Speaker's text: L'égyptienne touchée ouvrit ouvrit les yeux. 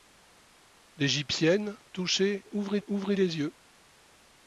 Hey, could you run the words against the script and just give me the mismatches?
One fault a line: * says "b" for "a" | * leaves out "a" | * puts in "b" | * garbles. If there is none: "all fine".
all fine